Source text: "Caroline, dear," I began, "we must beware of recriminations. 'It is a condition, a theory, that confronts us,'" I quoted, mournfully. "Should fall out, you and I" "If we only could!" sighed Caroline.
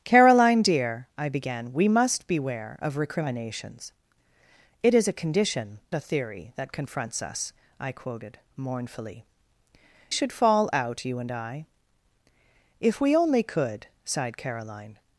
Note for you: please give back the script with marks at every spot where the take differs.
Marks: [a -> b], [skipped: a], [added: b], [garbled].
"Caroline, dear," I began, "we must beware of recriminations. 'It is a condition, a theory, that confronts us,'" I quoted, mournfully. "Should fall out, you and I" "If we only could!" sighed Caroline.